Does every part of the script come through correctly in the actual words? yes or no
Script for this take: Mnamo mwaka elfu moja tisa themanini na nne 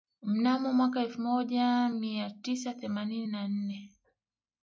no